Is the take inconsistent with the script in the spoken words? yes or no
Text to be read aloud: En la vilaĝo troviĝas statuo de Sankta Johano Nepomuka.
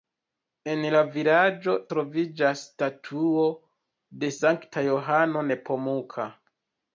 no